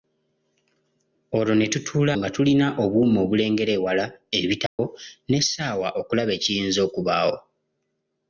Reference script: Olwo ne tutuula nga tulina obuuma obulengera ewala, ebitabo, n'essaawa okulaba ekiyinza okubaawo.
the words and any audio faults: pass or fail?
fail